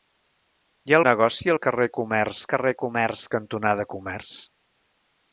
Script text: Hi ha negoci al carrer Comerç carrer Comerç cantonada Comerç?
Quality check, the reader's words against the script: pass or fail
pass